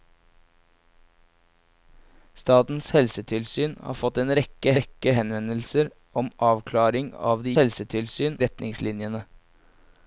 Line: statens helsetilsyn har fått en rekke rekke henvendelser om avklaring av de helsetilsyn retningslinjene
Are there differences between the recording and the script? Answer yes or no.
no